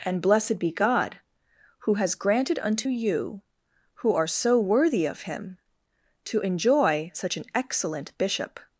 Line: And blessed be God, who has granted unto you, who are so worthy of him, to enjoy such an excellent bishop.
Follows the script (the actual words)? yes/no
yes